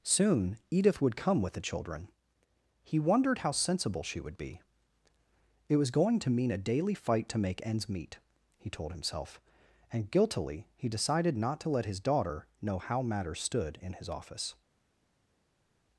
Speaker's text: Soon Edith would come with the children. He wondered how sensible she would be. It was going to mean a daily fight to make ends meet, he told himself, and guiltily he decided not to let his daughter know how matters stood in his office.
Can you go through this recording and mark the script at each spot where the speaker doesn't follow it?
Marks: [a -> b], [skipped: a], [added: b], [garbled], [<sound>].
Soon Edith would come with the children. He wondered how sensible she would be. It was going to mean a daily fight to make ends meet, he told himself, and guiltily he decided not to let his daughter know how matters stood in his office.